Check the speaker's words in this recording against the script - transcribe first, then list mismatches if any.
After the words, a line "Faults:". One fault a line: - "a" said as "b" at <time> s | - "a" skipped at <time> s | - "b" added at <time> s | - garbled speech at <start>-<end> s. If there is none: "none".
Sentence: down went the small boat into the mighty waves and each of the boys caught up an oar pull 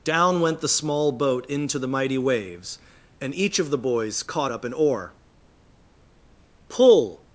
down went the small boat into the mighty waves and each of the boys caught up an oar pull
Faults:
none